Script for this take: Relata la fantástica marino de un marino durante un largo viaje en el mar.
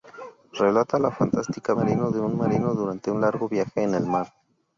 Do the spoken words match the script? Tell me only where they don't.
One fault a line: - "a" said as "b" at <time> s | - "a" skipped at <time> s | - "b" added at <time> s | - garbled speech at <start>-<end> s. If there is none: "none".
none